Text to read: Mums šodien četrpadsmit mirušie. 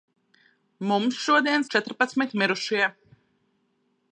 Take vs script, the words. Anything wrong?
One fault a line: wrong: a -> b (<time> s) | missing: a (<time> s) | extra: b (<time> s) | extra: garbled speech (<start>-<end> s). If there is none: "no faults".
no faults